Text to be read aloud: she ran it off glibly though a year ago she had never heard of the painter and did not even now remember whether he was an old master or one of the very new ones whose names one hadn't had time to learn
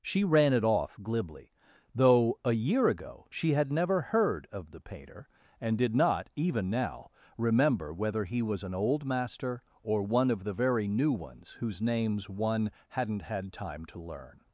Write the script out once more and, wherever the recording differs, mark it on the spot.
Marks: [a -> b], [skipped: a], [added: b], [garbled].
she ran it off glibly though a year ago she had never heard of the painter and did not even now remember whether he was an old master or one of the very new ones whose names one hadn't had time to learn